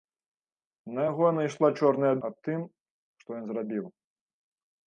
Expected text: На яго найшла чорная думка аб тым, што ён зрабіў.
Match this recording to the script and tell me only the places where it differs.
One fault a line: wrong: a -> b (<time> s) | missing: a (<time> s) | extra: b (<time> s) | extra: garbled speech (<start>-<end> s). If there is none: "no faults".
missing: думка (2.1 s)